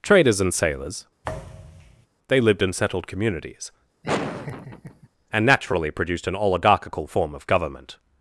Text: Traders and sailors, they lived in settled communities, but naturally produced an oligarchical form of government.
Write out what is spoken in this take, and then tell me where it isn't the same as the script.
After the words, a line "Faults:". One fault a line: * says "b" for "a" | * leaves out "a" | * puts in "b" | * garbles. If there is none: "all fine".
Traders and sailors, they lived in settled communities, and naturally produced an oligarchical form of government.
Faults:
* says "and" for "but"